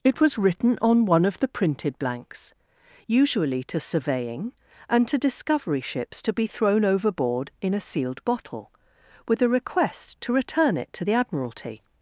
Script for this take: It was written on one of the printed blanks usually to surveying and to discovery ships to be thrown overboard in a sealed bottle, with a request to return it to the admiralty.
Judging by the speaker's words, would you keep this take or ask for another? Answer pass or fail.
pass